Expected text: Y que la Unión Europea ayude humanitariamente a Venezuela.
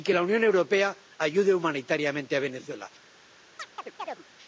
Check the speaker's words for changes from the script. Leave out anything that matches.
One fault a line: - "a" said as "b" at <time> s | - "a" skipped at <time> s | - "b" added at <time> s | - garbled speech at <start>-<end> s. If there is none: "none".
none